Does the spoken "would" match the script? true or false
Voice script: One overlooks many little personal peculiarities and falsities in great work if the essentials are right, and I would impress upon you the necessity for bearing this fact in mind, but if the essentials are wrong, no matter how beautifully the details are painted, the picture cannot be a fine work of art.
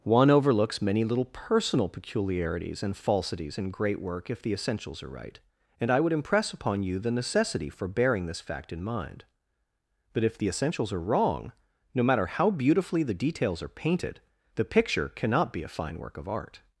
true